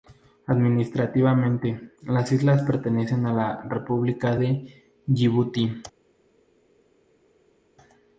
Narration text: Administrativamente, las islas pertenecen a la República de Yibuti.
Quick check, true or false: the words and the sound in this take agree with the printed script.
true